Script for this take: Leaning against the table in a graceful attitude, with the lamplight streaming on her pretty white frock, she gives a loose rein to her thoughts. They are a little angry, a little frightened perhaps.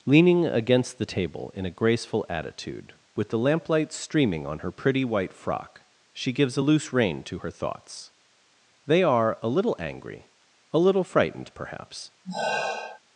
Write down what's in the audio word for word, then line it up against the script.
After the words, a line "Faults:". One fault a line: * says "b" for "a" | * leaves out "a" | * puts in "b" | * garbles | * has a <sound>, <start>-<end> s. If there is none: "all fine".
Leaning against the table in a graceful attitude, with the lamplight streaming on her pretty white frock, she gives a loose rein to her thoughts. They are a little angry, a little frightened perhaps.
Faults:
* has a sigh, 12.2-13.0 s